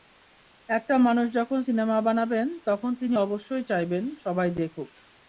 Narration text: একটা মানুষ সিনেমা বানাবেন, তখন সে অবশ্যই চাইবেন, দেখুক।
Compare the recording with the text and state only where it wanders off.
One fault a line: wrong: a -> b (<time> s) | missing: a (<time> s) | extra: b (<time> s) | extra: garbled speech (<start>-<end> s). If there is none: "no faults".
extra: যখন (1.3 s)
wrong: সে -> তিনি (2.9 s)
extra: সবাই (4.2 s)